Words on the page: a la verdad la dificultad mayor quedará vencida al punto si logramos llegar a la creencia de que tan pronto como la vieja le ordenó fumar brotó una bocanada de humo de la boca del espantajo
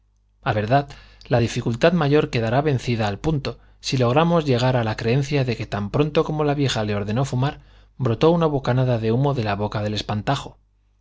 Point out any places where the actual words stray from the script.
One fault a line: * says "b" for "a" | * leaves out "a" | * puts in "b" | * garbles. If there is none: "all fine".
* leaves out "la"